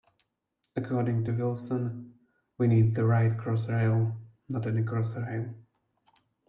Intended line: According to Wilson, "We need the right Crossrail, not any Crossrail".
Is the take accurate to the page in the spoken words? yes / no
yes